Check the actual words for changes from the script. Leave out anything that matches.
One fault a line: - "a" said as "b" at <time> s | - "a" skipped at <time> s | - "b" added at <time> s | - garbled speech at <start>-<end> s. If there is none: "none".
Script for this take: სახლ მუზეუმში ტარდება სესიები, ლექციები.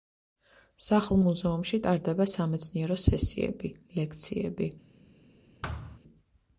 - "სამეცნიერო" added at 2.3 s